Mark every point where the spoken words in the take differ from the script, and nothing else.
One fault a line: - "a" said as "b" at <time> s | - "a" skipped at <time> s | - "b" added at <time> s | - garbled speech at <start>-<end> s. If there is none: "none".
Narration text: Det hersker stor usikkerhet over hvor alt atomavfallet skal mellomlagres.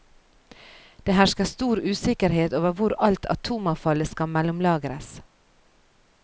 none